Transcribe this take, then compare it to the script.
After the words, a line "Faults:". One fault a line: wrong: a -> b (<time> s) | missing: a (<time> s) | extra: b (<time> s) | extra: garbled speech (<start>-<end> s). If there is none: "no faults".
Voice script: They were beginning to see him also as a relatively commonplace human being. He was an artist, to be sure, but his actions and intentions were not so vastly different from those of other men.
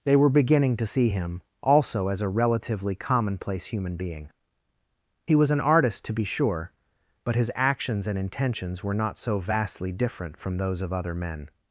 They were beginning to see him also as a relatively commonplace human being. He was an artist, to be sure, but his actions and intentions were not so vastly different from those of other men.
Faults:
no faults